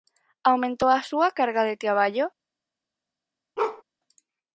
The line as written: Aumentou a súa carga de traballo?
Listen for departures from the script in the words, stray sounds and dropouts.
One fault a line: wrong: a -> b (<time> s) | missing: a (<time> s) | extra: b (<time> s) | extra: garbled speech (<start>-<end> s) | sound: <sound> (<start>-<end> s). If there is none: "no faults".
sound: bark (3.6-3.8 s)